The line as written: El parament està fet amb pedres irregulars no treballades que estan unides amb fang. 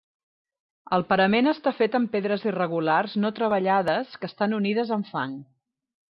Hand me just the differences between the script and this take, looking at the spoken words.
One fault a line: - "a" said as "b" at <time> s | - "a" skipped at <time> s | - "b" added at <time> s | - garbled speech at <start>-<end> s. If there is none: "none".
none